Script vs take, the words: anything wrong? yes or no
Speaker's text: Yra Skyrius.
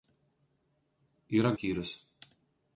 no